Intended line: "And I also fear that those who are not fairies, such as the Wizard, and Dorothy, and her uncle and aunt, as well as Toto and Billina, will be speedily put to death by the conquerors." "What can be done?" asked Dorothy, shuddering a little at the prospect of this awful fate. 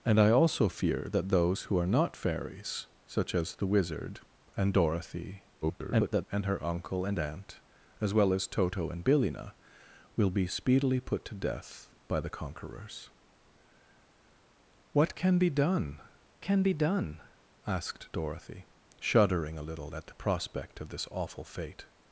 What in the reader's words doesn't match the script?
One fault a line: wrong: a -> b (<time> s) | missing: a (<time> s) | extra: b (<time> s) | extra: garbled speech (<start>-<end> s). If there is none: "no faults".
extra: garbled speech (5.6-6.2 s)
extra: can be done (16.4 s)